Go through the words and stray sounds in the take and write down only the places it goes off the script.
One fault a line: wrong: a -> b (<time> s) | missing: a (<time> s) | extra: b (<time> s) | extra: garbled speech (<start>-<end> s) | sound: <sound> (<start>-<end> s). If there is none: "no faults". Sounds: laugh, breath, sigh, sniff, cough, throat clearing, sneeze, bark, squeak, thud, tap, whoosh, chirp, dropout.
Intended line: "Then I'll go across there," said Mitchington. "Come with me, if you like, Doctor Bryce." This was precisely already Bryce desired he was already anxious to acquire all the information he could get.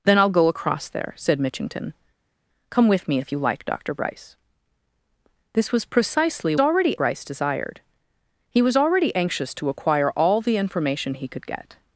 no faults